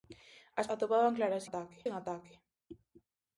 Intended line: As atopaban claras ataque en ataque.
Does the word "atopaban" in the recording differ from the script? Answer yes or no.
no